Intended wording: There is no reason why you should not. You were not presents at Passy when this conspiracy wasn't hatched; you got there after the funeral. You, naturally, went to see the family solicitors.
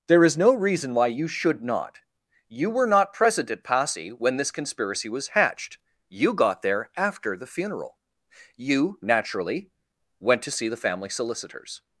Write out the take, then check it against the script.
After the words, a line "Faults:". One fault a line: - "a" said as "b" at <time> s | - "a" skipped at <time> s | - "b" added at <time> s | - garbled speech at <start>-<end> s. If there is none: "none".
There is no reason why you should not. You were not present at Passy when this conspiracy was hatched; you got there after the funeral. You, naturally, went to see the family solicitors.
Faults:
- "presents" said as "present" at 3.1 s
- "wasn't" said as "was" at 5.1 s